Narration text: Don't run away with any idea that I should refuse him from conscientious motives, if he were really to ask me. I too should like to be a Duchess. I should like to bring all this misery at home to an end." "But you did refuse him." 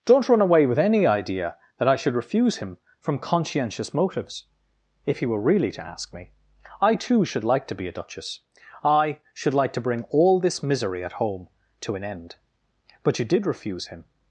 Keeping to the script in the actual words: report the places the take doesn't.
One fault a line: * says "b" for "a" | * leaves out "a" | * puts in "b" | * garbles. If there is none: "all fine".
all fine